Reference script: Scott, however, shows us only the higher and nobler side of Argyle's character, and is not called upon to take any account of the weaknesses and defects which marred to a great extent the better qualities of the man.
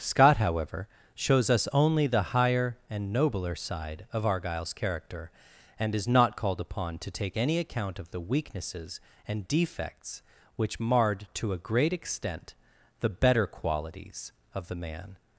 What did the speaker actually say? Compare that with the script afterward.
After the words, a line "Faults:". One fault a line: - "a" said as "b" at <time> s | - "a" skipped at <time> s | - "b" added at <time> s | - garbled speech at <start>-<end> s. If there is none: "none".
Scott, however, shows us only the higher and nobler side of Argyle's character, and is not called upon to take any account of the weaknesses and defects which marred to a great extent the better qualities of the man.
Faults:
none